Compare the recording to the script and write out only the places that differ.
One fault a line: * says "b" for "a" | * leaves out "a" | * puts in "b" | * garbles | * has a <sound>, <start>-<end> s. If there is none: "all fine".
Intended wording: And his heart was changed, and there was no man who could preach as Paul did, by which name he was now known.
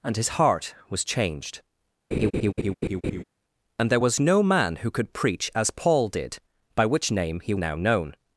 * has a laugh, 2.1-3.2 s
* leaves out "was"